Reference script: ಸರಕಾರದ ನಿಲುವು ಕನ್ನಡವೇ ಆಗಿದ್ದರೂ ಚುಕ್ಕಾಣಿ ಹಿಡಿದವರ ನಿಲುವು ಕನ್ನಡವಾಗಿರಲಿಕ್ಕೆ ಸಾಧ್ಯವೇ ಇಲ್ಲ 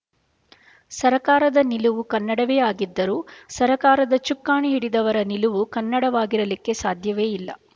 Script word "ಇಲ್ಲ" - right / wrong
right